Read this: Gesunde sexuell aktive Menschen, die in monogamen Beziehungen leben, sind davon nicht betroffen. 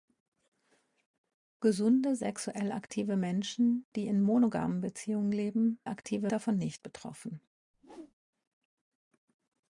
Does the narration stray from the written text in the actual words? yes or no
yes